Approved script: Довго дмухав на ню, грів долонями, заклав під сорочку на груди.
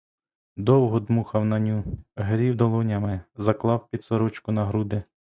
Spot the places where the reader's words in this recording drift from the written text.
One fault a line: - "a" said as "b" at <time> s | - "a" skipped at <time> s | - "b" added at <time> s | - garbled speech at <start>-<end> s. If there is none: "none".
none